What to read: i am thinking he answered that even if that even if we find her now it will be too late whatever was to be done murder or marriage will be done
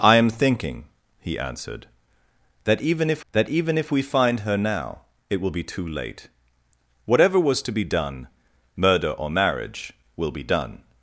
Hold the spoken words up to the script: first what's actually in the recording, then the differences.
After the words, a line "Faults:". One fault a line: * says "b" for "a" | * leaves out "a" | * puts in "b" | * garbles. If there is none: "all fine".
i am thinking he answered that even if that even if we find her now it will be too late whatever was to be done murder or marriage will be done
Faults:
all fine